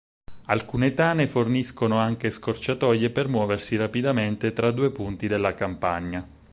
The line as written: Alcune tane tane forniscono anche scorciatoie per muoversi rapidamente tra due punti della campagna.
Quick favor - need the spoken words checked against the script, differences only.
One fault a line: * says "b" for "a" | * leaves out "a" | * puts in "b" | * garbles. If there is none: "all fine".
* leaves out "tane"